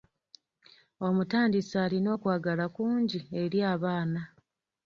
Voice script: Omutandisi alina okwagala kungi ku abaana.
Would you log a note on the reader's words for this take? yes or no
yes